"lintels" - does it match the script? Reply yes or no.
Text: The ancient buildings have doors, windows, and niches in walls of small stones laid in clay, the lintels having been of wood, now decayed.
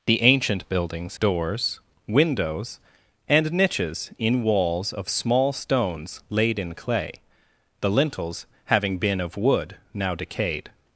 yes